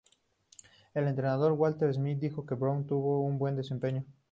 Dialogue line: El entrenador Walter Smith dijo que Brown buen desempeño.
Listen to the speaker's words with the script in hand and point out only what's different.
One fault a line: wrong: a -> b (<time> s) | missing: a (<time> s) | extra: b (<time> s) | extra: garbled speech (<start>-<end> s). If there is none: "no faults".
extra: tuvo un (2.9 s)